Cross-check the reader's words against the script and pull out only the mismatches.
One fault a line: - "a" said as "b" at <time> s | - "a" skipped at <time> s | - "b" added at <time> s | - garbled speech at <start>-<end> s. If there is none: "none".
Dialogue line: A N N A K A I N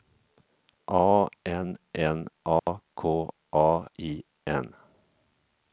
none